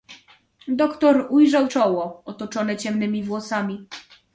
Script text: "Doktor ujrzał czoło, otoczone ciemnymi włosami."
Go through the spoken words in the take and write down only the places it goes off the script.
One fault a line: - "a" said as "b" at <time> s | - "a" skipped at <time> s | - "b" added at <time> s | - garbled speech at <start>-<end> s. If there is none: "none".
none